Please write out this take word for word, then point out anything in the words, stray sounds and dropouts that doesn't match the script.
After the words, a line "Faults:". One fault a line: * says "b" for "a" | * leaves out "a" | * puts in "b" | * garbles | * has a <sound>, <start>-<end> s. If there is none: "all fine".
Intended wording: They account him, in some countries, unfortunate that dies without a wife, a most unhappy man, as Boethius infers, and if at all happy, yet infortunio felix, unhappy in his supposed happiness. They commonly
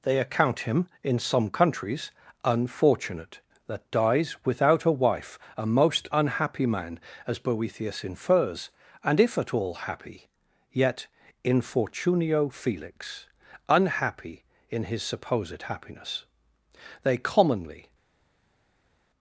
They account him, in some countries, unfortunate that dies without a wife, a most unhappy man, as Boethius infers, and if at all happy, yet infortunio felix, unhappy in his supposed happiness. They commonly
Faults:
all fine